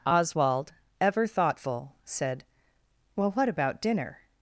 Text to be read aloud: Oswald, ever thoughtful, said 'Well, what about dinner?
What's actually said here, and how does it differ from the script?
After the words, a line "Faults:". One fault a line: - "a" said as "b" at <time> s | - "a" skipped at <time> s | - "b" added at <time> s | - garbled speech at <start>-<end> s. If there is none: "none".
Oswald, ever thoughtful, said 'Well, what about dinner?
Faults:
none